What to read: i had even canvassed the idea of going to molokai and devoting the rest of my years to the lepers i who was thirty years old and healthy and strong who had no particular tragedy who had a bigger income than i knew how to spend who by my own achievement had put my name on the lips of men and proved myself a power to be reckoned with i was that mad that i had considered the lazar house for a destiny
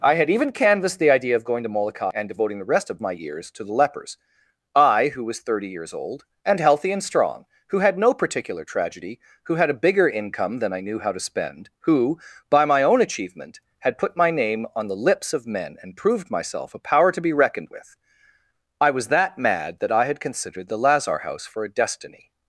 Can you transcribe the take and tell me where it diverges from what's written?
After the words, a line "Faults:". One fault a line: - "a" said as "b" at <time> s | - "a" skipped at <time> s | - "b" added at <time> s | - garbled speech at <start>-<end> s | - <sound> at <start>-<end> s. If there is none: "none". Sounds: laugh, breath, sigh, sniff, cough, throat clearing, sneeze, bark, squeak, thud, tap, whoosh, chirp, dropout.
i had even canvassed the idea of going to molokai and devoting the rest of my years to the lepers i who was thirty years old and healthy and strong who had no particular tragedy who had a bigger income than i knew how to spend who by my own achievement had put my name on the lips of men and proved myself a power to be reckoned with i was that mad that i had considered the lazar house for a destiny
Faults:
none